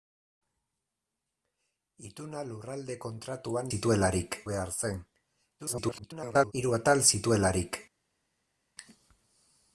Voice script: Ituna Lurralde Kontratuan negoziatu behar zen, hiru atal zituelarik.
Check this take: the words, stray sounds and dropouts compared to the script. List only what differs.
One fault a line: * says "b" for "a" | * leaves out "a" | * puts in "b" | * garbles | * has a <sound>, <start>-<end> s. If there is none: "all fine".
* says "zituelarik" for "negoziatu"
* garbles